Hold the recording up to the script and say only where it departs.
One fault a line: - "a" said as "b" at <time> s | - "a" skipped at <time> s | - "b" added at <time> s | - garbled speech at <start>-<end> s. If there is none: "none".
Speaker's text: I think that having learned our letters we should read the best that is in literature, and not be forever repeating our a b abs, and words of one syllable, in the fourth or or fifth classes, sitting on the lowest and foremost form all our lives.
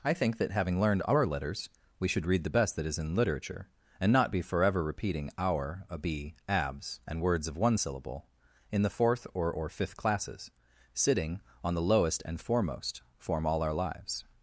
none